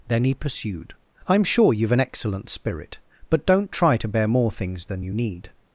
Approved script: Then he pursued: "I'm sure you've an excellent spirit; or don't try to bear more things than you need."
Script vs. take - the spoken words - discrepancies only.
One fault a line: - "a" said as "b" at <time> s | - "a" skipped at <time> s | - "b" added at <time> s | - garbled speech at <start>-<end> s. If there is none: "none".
- "or" said as "but" at 3.3 s